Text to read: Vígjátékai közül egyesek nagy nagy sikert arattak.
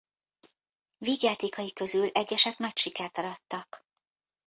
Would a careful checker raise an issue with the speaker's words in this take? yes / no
yes